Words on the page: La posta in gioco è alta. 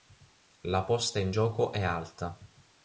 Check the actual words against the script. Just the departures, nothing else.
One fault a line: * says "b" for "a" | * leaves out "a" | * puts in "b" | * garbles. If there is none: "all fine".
all fine